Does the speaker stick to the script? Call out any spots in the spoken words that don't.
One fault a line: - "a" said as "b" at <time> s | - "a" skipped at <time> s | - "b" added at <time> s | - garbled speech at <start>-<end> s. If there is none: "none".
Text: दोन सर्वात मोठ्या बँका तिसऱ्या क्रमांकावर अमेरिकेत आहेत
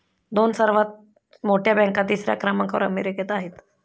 none